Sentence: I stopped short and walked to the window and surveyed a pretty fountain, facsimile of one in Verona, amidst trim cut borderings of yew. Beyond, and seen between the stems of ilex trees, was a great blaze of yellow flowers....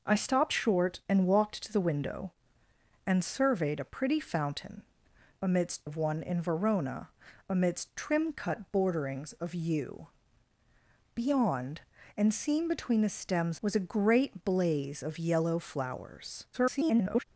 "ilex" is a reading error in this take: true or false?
true